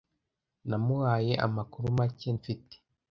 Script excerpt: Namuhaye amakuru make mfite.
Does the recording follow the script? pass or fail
pass